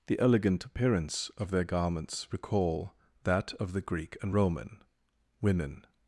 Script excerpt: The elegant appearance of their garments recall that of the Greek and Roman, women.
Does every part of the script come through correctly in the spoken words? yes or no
yes